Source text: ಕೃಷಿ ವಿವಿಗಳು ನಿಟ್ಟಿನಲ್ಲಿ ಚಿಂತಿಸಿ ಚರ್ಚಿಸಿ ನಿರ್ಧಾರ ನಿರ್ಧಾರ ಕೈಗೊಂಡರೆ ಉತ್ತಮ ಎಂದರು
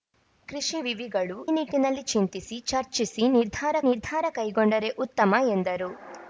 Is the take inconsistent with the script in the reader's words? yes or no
no